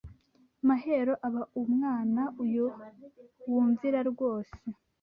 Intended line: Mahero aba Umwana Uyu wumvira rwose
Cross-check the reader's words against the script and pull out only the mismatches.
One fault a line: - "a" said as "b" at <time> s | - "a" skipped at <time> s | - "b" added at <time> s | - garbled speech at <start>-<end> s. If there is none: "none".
none